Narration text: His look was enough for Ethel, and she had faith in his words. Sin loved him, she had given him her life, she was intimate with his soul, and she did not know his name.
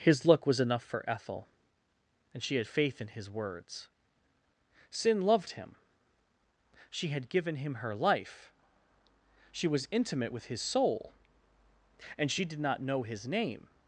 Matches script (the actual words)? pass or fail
pass